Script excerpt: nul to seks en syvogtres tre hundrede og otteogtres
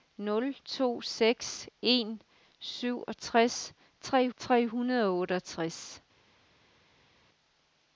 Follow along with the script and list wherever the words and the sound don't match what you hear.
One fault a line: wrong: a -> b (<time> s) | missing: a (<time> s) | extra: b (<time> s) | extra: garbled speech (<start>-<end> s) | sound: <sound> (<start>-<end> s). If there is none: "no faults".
extra: tre (4.4 s)